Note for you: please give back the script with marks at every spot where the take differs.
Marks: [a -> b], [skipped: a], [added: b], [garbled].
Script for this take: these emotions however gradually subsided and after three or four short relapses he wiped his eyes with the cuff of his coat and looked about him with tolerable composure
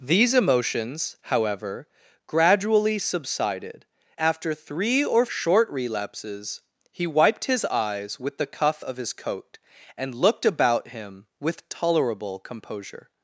these emotions however gradually subsided [skipped: and] after three or [skipped: four] short relapses he wiped his eyes with the cuff of his coat and looked about him with tolerable composure